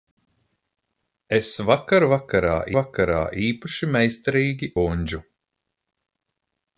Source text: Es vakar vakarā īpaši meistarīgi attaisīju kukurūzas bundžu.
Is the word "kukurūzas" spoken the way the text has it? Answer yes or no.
no